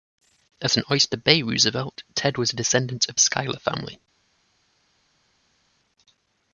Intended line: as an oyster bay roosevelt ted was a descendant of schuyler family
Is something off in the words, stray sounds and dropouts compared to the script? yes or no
no